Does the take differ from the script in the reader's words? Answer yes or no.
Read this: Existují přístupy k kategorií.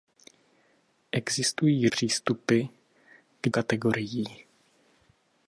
no